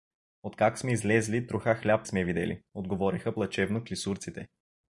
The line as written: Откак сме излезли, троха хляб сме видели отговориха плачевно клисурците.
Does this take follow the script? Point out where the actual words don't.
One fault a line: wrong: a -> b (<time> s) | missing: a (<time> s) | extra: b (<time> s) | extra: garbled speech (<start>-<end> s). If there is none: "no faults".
no faults